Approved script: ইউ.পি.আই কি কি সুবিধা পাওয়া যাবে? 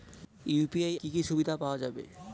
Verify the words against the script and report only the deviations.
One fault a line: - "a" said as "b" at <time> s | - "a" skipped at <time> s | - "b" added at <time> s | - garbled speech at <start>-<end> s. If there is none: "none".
none